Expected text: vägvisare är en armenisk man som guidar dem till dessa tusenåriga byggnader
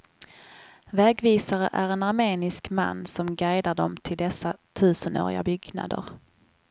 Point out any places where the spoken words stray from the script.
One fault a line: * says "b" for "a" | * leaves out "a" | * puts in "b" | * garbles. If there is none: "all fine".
all fine